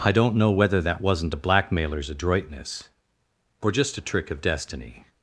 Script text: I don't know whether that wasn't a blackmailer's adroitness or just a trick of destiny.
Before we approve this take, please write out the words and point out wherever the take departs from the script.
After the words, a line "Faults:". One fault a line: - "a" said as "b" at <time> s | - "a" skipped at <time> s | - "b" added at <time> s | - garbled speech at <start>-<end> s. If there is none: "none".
I don't know whether that wasn't a blackmailer's adroitness or just a trick of destiny.
Faults:
none